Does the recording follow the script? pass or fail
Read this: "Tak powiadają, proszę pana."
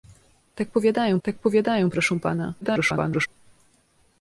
fail